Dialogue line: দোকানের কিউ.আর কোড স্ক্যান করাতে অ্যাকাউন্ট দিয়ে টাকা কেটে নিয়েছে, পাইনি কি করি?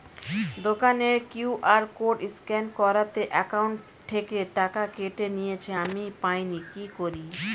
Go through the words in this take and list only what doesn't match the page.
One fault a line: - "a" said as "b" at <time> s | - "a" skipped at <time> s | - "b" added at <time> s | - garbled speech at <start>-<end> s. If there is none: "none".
- "দিয়ে" said as "থেকে" at 4.1 s
- "আমি" added at 5.8 s